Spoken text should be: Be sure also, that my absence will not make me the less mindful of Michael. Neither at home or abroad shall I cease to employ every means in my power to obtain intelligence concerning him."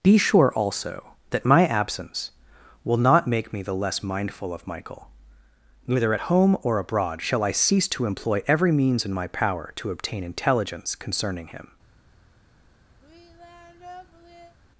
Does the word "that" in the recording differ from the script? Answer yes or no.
no